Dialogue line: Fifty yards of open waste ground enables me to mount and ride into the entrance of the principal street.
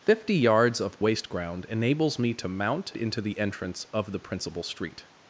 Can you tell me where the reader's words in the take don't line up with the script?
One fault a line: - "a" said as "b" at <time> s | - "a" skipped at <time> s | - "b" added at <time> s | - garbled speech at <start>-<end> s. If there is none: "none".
- "open" skipped at 1.0 s
- "and ride" skipped at 2.9 s